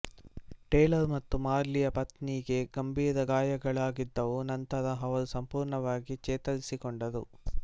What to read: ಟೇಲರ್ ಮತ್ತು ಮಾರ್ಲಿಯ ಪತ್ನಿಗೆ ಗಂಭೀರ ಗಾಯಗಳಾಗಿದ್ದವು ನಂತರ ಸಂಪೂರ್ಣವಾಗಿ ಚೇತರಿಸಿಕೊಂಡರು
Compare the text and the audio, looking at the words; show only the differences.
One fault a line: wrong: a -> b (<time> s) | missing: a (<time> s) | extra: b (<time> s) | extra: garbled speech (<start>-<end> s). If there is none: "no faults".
extra: ಅವರು (5.0 s)